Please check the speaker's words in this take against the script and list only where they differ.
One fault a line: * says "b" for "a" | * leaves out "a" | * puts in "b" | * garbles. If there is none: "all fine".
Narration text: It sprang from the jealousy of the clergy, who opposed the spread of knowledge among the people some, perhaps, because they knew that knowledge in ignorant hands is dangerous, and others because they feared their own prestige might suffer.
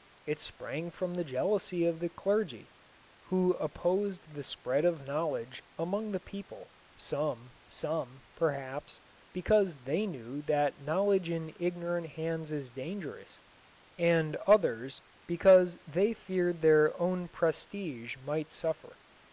* puts in "some"